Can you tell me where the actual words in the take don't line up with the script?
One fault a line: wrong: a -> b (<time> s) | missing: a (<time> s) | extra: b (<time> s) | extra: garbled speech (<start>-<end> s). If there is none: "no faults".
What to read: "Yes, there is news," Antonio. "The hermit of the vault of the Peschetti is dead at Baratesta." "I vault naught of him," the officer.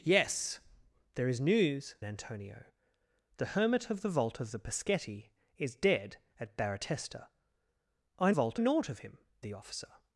no faults